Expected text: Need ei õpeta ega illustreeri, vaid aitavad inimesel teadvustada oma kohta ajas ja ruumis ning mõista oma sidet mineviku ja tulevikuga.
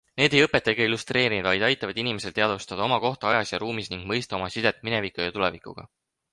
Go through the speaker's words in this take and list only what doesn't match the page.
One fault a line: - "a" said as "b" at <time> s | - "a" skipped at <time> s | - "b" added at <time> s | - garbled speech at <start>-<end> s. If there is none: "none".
none